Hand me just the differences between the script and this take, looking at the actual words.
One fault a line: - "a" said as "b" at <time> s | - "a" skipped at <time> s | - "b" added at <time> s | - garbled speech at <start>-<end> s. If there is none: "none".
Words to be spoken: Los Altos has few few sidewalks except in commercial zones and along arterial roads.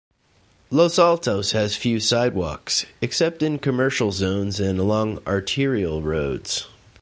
- "few" skipped at 2.0 s